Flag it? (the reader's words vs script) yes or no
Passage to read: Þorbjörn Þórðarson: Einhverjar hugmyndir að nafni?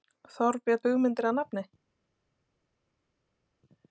yes